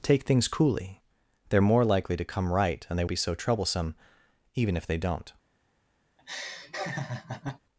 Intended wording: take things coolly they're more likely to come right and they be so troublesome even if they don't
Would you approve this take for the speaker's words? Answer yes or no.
yes